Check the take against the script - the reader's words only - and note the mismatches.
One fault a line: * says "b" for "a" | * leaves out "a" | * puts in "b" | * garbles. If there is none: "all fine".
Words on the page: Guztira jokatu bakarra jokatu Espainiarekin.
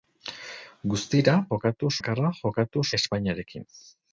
all fine